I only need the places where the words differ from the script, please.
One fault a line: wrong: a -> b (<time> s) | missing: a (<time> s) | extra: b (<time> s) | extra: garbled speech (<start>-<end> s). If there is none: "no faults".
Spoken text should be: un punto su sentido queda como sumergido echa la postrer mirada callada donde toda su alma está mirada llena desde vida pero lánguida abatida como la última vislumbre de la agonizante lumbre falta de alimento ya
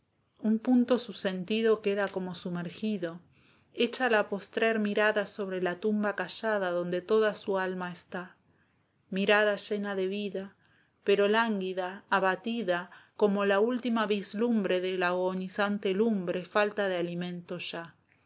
extra: sobre la tumba (5.3 s)
wrong: desde -> de (9.9 s)